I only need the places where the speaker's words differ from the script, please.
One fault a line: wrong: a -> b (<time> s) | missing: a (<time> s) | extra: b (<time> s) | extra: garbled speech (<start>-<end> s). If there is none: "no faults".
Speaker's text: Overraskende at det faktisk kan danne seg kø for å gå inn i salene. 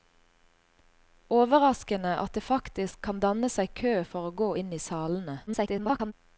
extra: garbled speech (5.5-6.1 s)